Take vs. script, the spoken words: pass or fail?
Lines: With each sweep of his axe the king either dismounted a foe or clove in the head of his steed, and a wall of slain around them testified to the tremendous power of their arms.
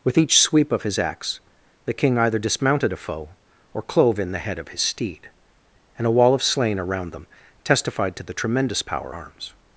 fail